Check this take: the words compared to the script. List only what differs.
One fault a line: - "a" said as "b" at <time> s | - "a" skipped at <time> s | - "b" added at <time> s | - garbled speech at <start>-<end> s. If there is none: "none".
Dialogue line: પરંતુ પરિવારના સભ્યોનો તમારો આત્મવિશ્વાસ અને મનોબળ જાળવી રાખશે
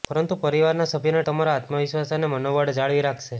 none